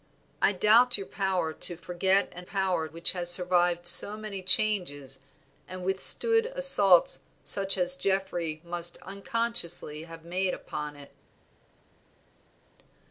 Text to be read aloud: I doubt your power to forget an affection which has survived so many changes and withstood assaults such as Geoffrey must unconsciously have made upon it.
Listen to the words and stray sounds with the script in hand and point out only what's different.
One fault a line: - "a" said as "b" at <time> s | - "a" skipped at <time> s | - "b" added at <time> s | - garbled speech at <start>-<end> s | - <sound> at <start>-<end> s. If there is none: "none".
- "affection" said as "power" at 2.4 s